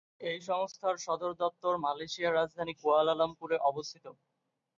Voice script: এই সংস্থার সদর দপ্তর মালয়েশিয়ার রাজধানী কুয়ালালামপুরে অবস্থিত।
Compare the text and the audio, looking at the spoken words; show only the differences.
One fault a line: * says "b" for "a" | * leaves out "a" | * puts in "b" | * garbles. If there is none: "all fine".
all fine